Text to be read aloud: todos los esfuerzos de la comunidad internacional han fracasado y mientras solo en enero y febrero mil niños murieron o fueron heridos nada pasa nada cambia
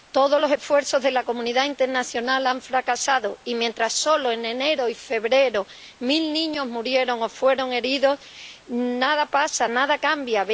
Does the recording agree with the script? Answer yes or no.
yes